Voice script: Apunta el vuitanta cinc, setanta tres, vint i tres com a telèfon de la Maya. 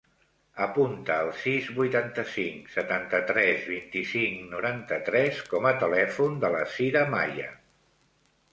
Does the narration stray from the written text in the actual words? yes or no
yes